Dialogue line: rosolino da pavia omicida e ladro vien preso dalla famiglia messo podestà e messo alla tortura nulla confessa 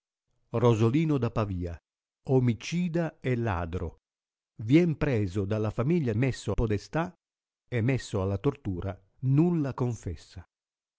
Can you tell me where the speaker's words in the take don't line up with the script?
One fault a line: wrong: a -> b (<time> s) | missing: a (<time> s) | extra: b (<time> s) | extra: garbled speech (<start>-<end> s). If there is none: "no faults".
no faults